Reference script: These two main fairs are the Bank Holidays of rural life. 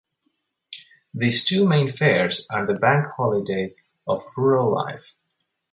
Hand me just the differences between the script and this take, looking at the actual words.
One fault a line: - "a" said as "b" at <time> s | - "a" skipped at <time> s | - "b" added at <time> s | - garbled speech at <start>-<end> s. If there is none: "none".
none